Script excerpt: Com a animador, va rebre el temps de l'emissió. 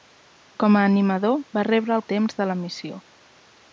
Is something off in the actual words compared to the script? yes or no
no